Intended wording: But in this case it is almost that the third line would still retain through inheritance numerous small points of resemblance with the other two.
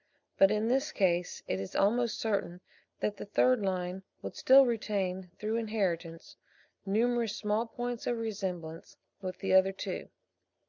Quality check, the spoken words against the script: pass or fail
fail